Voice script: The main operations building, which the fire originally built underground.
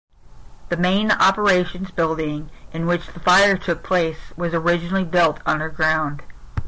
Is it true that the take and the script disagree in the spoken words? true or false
true